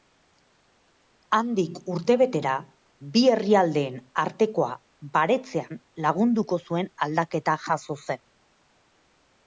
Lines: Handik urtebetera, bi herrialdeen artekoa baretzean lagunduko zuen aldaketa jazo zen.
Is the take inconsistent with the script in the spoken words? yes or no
no